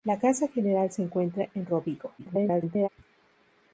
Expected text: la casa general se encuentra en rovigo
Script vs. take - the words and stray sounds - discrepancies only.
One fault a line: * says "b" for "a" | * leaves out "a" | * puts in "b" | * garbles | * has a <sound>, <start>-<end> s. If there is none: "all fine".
* garbles